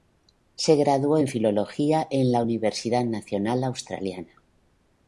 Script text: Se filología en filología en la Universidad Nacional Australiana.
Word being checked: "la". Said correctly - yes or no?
yes